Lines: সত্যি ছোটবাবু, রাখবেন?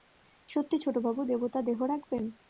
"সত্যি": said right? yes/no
yes